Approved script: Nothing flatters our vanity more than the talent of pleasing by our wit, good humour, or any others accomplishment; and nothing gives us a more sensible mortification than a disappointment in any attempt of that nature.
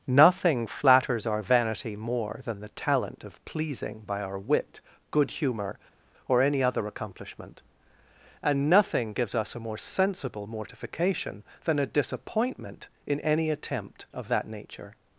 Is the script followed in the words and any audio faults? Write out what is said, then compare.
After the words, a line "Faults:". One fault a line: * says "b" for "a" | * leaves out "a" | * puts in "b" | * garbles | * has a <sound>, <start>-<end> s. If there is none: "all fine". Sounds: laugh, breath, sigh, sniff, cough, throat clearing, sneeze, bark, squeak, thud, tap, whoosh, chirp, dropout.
Nothing flatters our vanity more than the talent of pleasing by our wit, good humour, or any other accomplishment; and nothing gives us a more sensible mortification than a disappointment in any attempt of that nature.
Faults:
* says "other" for "others"